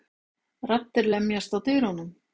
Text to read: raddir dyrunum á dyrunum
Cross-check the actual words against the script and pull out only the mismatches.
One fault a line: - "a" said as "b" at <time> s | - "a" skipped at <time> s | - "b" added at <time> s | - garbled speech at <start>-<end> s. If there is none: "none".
- "dyrunum" said as "lemjast" at 1.1 s